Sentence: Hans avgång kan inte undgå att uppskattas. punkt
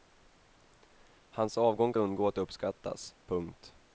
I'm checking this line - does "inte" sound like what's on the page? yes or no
no